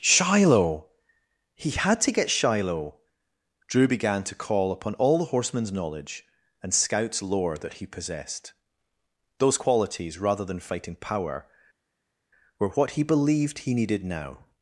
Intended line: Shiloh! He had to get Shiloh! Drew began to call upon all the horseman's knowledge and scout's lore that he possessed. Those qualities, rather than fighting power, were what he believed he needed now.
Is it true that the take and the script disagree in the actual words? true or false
false